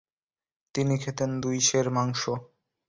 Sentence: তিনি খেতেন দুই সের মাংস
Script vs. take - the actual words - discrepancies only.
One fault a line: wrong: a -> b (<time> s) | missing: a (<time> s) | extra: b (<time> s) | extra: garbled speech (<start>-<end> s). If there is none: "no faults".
no faults